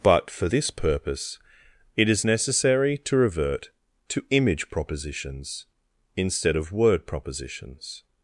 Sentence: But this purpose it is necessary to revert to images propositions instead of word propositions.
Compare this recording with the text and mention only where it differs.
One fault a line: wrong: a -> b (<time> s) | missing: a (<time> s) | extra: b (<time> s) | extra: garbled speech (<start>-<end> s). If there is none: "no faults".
extra: for (0.3 s)
wrong: images -> image (4.3 s)